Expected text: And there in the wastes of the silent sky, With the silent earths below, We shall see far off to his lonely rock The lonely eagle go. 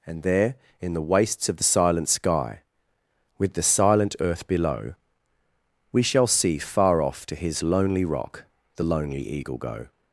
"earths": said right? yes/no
no